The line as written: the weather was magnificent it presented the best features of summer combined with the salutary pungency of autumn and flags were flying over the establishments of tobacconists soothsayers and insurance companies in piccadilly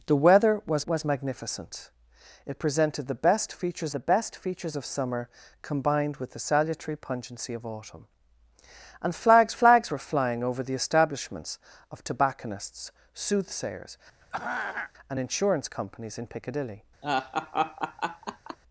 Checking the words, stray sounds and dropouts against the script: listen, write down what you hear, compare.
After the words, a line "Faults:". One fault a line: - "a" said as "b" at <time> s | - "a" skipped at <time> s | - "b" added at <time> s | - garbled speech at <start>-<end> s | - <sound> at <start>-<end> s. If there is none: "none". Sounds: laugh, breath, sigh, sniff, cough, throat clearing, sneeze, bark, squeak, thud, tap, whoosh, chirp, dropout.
the weather was was magnificent it presented the best features the best features of summer combined with the salutary pungency of autumn and flags flags were flying over the establishments of tobacconists soothsayers and insurance companies in piccadilly
Faults:
- "was" added at 0.8 s
- "the best features" added at 3.9 s
- "flags" added at 9.5 s
- throat clearing at 14.2-14.9 s
- laugh at 17.0-18.6 s